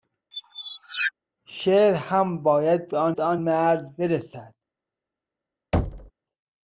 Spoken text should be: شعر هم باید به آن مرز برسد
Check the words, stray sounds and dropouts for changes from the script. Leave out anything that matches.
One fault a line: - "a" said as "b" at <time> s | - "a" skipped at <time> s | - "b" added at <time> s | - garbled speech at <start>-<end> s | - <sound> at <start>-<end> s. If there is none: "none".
- squeak at 0.3-1.1 s
- "به آن" added at 3.1 s
- thud at 5.7-6.1 s